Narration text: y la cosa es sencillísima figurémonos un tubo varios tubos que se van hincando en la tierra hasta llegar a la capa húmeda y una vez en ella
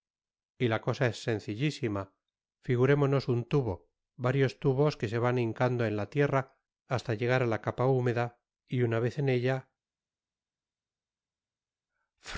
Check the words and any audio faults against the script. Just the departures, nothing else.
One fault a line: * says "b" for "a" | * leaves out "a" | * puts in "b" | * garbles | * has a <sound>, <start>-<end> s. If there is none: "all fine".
all fine